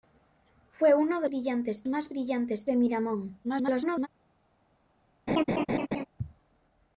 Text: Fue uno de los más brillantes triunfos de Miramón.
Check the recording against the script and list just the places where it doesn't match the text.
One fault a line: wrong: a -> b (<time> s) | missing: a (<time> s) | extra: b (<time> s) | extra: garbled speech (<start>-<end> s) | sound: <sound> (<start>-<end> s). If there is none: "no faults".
wrong: los -> brillantes (1.3 s)
missing: triunfos (2.7 s)
extra: garbled speech (3.4-4.1 s)
sound: laugh (5.3-6.1 s)